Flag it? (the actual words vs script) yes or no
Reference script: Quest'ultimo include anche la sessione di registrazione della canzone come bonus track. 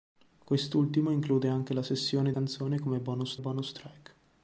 yes